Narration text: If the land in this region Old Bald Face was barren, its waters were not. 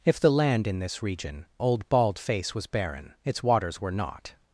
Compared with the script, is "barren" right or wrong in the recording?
right